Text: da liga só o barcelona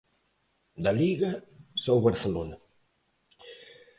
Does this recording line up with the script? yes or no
yes